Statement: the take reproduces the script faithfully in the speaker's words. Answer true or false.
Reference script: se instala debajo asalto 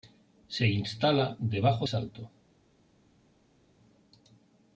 true